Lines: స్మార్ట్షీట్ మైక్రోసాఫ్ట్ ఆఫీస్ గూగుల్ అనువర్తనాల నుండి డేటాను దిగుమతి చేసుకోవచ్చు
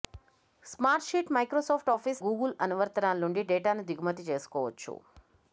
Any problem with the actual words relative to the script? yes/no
no